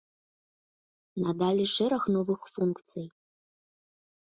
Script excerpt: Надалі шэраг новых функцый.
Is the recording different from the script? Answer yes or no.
no